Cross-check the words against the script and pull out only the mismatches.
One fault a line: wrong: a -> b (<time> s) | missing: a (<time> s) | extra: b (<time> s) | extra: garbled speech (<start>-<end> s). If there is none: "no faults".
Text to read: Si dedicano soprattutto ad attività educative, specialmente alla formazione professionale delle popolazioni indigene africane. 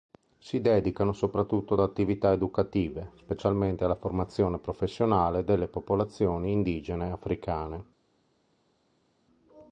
no faults